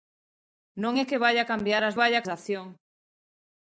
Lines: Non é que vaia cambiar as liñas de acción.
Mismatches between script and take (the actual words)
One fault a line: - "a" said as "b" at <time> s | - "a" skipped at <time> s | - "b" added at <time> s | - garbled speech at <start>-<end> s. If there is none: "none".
- "liñas" said as "vaia" at 2.0 s